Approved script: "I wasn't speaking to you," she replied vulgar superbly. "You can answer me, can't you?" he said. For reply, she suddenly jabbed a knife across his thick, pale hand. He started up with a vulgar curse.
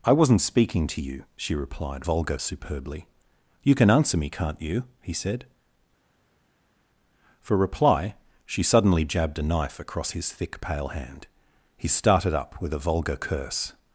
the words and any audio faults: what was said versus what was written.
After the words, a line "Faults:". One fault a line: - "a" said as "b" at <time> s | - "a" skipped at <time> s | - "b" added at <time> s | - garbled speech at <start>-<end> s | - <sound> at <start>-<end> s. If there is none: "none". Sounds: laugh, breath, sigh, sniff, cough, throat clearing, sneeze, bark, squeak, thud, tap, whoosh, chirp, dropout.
"I wasn't speaking to you," she replied vulgar superbly. "You can answer me, can't you?" he said. For reply, she suddenly jabbed a knife across his thick, pale hand. He started up with a vulgar curse.
Faults:
none